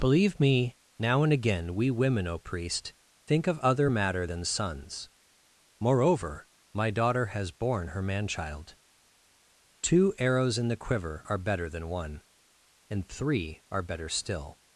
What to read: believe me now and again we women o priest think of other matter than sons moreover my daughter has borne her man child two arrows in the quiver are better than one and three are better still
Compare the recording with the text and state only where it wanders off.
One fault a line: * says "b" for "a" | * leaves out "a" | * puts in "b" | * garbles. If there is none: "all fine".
all fine